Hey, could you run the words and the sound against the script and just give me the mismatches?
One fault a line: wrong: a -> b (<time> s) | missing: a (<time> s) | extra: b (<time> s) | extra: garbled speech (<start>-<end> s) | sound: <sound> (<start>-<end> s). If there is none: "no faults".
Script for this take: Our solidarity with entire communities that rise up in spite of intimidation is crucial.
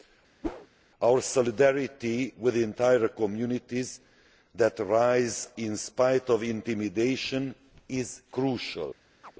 sound: whoosh (0.4-0.7 s)
missing: up (5.5 s)
sound: chirp (9.2-9.3 s)